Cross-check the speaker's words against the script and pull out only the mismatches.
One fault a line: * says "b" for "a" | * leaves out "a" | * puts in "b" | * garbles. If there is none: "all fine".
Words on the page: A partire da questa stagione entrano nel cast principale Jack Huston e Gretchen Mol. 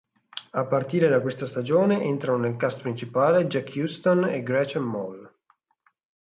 all fine